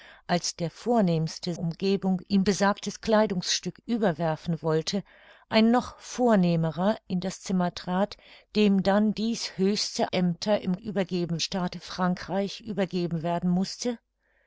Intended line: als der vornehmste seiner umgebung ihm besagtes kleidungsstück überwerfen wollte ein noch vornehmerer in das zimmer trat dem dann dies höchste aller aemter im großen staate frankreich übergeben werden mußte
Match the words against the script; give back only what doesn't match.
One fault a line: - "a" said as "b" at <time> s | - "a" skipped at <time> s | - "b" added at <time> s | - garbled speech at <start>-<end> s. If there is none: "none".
- "seiner" skipped at 1.5 s
- "aller" skipped at 10.1 s
- "großen" said as "übergeben" at 10.8 s